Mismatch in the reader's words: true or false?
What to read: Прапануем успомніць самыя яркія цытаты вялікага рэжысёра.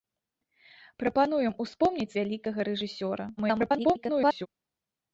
true